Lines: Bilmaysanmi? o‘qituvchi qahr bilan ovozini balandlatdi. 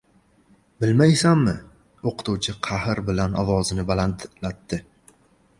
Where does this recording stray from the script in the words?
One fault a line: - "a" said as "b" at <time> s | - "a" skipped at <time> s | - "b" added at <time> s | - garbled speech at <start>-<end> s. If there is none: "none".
none